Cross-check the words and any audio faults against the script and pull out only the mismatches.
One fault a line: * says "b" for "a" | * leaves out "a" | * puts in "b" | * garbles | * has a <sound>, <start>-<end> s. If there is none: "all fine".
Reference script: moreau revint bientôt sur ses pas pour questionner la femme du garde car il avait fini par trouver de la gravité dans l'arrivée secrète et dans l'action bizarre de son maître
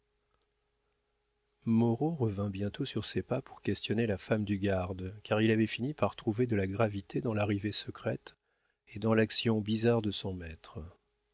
all fine